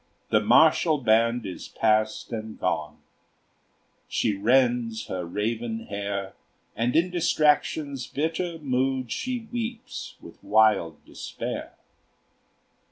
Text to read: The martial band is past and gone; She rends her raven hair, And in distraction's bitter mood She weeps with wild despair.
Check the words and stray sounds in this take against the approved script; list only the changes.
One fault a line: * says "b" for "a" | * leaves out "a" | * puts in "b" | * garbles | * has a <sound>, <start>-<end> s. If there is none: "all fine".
all fine